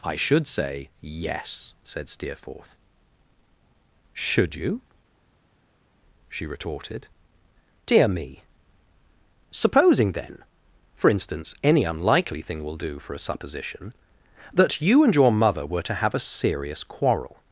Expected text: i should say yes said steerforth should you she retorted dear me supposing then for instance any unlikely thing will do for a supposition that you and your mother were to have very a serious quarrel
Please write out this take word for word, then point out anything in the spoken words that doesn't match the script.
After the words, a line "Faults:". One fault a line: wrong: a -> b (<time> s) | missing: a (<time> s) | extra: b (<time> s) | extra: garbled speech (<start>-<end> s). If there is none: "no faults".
i should say yes said steerforth should you she retorted dear me supposing then for instance any unlikely thing will do for a supposition that you and your mother were to have a serious quarrel
Faults:
missing: very (16.1 s)